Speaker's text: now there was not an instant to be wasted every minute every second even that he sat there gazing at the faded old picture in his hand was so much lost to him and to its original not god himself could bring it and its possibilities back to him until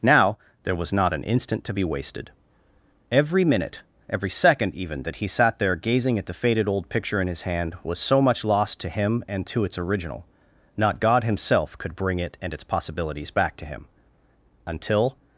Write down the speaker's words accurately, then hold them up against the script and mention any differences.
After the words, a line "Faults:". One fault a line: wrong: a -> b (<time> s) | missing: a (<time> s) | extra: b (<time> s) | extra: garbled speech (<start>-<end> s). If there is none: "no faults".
now there was not an instant to be wasted every minute every second even that he sat there gazing at the faded old picture in his hand was so much lost to him and to its original not god himself could bring it and its possibilities back to him until
Faults:
no faults